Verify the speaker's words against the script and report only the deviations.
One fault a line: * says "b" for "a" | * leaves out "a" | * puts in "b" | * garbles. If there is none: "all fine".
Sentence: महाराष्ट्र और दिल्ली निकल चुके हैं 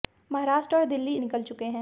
all fine